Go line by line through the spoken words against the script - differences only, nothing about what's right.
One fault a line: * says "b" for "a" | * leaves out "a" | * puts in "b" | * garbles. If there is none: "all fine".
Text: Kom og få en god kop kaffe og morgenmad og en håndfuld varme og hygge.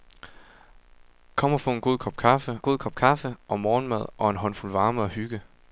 * puts in "god kop kaffe"